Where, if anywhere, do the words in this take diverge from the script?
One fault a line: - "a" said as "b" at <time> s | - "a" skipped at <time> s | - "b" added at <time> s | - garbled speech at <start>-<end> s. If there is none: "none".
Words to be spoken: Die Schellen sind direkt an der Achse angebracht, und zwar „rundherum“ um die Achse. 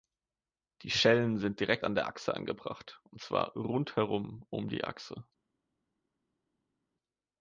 none